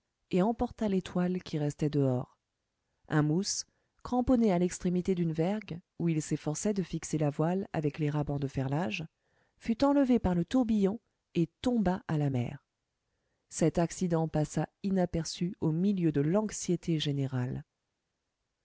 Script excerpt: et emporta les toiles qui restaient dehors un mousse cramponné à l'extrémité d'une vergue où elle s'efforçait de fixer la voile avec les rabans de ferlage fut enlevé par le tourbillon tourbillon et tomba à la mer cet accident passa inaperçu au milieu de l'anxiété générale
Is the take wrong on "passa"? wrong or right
right